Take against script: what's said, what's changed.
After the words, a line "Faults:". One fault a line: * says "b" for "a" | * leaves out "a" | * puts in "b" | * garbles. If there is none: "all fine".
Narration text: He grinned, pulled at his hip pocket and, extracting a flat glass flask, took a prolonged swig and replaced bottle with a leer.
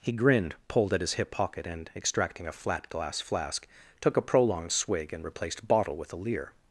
He grinned, pulled at his hip pocket and, extracting a flat glass flask, took a prolonged swig and replaced bottle with a leer.
Faults:
all fine